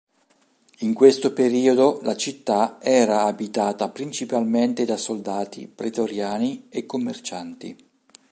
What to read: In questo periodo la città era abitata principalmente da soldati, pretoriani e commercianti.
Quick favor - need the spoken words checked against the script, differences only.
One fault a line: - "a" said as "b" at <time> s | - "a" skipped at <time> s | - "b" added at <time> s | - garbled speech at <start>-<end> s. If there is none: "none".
none